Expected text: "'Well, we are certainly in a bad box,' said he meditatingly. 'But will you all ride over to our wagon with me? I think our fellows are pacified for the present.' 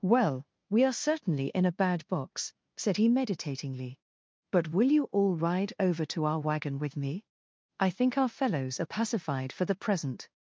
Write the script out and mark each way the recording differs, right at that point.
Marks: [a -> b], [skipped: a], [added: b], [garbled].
"'Well, we are certainly in a bad box,' said he meditatingly. 'But will you all ride over to our wagon with me? I think our fellows are pacified for the present.'